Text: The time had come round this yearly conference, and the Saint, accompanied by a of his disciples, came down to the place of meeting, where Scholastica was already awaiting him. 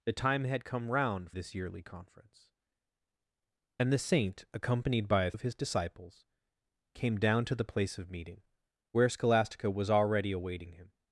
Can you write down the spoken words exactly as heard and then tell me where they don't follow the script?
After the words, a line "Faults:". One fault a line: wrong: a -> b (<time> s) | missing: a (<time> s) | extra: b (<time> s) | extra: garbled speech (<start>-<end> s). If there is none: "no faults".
The time had come round this yearly conference, and the Saint, accompanied by a of his disciples, came down to the place of meeting, where Scholastica was already awaiting him.
Faults:
no faults